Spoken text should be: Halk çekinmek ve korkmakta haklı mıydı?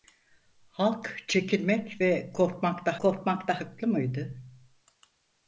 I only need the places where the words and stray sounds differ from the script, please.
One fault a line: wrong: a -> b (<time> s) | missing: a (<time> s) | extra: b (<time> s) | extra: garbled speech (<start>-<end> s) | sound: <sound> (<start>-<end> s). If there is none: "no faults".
extra: korkmakta (3.0 s)